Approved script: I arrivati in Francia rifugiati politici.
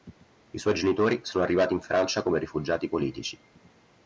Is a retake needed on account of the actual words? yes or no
yes